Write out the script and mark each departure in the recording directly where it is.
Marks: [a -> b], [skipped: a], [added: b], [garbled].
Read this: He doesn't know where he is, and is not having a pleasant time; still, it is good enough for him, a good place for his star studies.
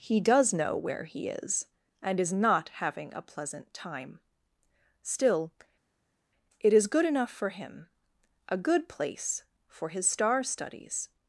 He [doesn't -> does] know where he is, and is not having a pleasant time; still, it is good enough for him, a good place for his star studies.